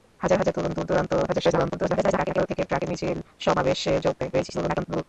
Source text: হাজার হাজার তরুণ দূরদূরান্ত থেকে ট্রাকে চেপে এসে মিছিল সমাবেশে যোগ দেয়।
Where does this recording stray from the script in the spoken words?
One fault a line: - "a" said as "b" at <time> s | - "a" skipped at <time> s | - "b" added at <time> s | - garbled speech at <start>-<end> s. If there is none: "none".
- garbled speech at 1.3-2.5 s
- "চেপে এসে" skipped at 2.9 s
- garbled speech at 4.3-5.0 s